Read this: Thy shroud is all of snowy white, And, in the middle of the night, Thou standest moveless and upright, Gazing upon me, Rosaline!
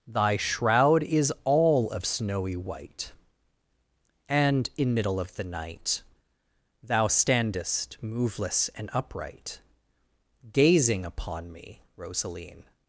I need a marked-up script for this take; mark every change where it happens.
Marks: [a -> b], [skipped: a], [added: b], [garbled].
Thy shroud is all of snowy white, And, in [skipped: the] middle of the night, Thou standest moveless and upright, Gazing upon me, Rosaline!